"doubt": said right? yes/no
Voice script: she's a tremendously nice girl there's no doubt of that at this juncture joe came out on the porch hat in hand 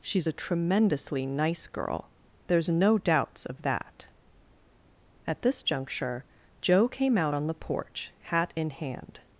no